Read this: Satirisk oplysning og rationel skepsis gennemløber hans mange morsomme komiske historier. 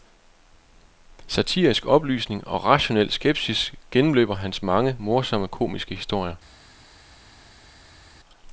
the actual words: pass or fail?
pass